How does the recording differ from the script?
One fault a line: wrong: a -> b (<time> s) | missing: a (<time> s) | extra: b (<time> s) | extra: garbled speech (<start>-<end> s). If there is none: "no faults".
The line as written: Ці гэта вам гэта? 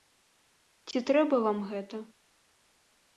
wrong: гэта -> трэба (1.1 s)